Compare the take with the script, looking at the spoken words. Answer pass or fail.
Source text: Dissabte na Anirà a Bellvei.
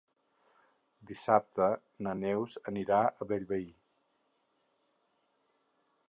fail